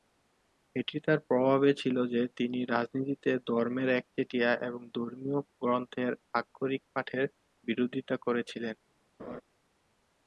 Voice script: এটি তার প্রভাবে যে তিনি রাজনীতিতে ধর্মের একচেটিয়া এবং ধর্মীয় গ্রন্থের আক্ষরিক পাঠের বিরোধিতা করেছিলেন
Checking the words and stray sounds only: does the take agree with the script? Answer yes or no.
no